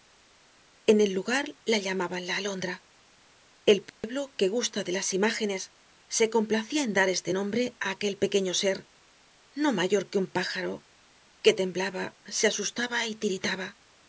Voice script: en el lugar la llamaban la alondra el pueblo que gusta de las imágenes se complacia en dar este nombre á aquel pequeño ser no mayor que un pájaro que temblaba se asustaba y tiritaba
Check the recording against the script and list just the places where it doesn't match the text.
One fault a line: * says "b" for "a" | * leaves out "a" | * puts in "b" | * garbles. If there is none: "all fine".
all fine